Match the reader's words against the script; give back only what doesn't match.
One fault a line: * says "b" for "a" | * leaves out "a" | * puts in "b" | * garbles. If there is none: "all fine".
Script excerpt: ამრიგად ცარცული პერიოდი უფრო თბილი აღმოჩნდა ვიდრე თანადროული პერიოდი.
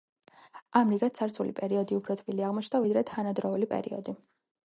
all fine